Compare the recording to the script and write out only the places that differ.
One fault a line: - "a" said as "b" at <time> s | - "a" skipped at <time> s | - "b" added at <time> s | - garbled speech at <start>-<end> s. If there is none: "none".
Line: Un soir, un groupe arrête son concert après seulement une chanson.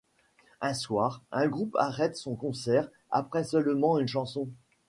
none